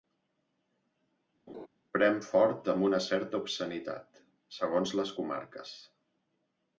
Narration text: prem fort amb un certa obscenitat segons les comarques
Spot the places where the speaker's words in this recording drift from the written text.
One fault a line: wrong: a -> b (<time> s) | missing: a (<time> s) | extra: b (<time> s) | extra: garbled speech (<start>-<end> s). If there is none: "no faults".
wrong: un -> una (2.9 s)